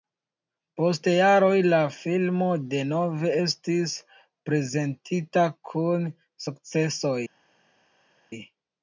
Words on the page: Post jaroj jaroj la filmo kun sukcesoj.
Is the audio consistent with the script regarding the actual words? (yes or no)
no